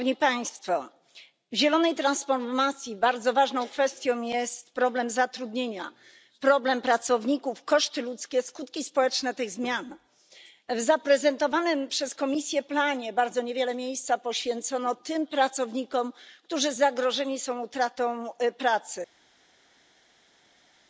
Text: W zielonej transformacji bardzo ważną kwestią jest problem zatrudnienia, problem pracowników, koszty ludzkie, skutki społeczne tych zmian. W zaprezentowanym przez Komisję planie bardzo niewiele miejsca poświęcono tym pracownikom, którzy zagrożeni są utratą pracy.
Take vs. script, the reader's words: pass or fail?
pass